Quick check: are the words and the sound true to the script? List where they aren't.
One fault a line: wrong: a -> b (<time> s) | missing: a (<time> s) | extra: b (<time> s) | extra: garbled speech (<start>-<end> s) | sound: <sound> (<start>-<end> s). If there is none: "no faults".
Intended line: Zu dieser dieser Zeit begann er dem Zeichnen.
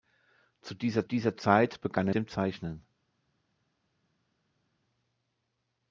no faults